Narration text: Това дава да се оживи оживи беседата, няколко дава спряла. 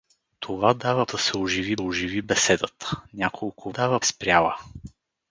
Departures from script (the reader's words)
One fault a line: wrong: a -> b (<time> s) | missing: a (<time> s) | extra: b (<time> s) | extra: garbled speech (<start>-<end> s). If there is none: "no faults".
no faults